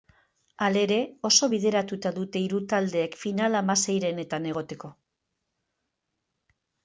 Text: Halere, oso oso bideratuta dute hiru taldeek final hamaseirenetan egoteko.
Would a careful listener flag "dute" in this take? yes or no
no